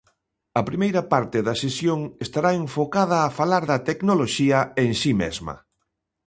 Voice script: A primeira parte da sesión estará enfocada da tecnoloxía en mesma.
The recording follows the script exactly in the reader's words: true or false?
false